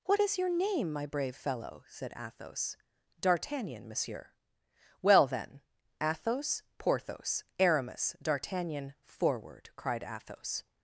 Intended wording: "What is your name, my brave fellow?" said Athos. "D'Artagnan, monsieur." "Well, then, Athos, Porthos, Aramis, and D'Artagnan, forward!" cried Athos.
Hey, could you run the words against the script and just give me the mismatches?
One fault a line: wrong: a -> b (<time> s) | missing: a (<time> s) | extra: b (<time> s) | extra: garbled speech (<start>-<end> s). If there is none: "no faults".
missing: and (8.2 s)